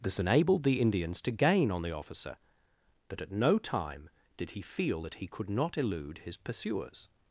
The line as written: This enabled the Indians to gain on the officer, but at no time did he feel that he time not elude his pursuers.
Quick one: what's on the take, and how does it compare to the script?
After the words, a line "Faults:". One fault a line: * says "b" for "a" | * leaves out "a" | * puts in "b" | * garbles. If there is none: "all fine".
This enabled the Indians to gain on the officer, but at no time did he feel that he could not elude his pursuers.
Faults:
* says "could" for "time"